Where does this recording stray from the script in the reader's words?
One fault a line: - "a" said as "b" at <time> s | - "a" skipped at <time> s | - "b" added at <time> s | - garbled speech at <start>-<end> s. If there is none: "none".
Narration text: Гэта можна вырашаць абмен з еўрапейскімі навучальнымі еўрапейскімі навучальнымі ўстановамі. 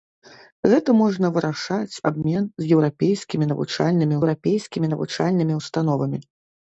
none